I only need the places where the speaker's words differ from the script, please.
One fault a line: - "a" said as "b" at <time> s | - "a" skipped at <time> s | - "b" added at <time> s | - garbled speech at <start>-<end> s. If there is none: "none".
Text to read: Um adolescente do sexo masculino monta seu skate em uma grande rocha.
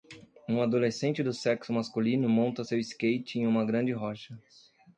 none